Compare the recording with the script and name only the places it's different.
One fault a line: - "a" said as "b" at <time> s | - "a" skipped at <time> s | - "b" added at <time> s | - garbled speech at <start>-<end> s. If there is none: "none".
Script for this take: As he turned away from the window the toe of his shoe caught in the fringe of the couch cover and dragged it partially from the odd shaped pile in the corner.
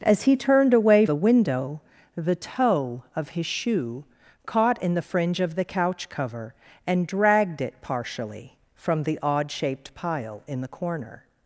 - "from" skipped at 1.1 s